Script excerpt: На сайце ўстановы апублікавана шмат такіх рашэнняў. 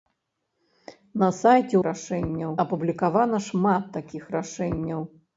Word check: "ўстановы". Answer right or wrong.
wrong